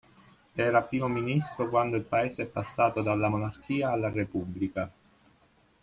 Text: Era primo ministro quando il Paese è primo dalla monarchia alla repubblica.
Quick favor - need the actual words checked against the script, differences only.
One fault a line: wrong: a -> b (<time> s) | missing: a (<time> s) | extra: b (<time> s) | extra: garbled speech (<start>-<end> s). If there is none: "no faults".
wrong: primo -> passato (2.5 s)